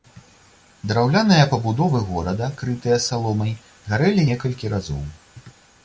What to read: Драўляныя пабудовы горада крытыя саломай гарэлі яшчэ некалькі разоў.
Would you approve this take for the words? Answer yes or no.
no